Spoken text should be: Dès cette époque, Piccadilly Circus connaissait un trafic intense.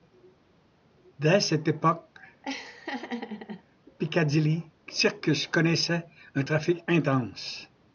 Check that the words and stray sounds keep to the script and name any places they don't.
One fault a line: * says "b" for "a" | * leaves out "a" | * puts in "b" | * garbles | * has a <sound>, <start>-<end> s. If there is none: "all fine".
* has a laugh, 2.4-3.6 s